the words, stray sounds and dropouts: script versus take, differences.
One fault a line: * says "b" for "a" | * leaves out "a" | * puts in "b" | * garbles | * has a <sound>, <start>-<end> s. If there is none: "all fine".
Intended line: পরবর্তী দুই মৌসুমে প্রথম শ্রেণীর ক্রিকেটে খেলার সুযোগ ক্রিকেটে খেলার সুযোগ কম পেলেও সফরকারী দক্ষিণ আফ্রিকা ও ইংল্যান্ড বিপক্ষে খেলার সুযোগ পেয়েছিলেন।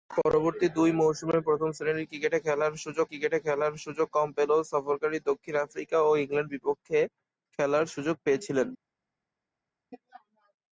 all fine